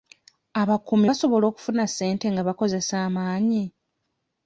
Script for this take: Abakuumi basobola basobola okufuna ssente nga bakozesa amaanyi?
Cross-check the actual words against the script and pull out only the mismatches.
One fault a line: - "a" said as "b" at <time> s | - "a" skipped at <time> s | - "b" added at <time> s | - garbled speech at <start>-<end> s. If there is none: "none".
- "basobola" skipped at 1.4 s